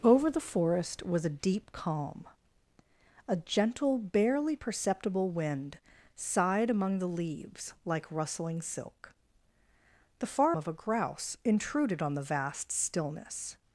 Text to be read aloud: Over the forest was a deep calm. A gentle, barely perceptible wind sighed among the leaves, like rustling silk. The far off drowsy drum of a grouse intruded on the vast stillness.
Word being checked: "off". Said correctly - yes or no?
no